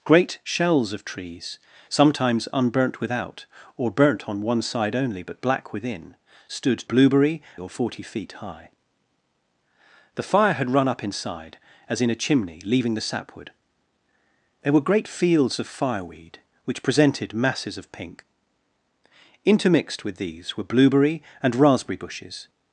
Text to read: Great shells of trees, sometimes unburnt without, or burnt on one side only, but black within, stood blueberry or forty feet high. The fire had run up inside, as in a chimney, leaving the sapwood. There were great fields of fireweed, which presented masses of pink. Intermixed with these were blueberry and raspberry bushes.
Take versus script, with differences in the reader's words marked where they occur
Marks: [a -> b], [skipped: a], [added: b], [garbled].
Great shells of trees, sometimes unburnt without, or burnt on one side only, but black within, stood blueberry or forty feet high. The fire had run up inside, as in a chimney, leaving the sapwood. There were great fields of fireweed, which presented masses of pink. Intermixed with these were blueberry and raspberry bushes.